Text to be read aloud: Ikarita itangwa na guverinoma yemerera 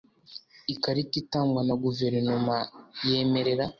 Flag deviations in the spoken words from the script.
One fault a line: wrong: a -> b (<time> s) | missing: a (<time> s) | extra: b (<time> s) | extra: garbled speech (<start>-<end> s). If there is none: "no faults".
no faults